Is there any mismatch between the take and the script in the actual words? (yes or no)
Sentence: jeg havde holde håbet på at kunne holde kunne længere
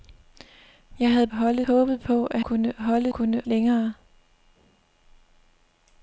no